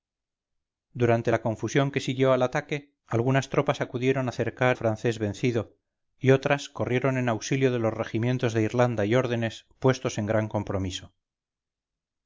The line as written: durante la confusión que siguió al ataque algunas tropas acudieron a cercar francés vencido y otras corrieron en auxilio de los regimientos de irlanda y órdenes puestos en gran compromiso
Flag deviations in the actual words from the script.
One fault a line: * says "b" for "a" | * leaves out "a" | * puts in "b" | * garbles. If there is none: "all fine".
all fine